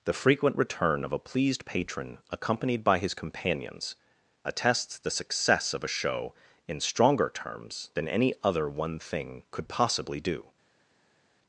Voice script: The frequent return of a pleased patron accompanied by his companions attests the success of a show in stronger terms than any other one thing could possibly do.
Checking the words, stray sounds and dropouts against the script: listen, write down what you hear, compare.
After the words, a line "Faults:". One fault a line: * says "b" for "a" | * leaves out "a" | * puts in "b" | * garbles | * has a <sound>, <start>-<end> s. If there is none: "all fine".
The frequent return of a pleased patron accompanied by his companions attests the success of a show in stronger terms than any other one thing could possibly do.
Faults:
all fine